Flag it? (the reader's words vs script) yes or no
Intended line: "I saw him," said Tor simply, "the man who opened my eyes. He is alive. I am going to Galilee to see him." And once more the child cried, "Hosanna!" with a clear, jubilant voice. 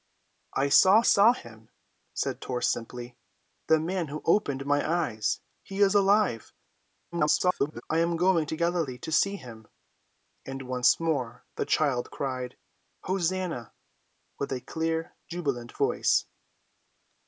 yes